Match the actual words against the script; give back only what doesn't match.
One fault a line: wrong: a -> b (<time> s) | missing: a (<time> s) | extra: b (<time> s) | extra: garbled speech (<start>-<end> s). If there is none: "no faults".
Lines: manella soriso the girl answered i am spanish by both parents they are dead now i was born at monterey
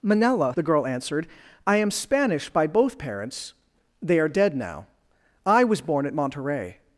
missing: soriso (0.5 s)